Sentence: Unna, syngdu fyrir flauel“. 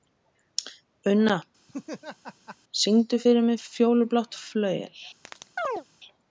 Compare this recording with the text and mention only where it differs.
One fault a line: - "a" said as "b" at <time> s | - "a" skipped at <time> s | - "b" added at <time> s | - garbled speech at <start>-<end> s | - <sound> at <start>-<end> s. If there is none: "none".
- laugh at 1.7-2.6 s
- "mig Fjólublátt" added at 3.5 s
- chirp at 5.2-5.8 s